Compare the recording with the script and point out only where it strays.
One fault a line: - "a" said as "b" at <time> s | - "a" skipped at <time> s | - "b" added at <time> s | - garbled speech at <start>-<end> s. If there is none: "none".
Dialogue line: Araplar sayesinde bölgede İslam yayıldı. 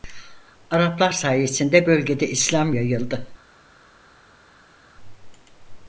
none